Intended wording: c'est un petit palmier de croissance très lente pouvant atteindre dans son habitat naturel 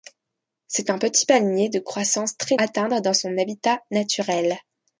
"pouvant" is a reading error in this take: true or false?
true